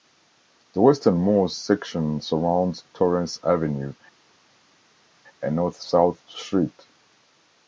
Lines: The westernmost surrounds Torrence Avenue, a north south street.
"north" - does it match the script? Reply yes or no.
yes